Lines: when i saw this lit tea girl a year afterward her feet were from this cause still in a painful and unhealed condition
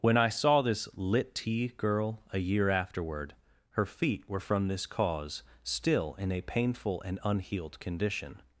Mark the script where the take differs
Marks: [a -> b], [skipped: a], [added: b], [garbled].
when i saw this lit tea girl a year afterward her feet were from this cause still in a painful and unhealed condition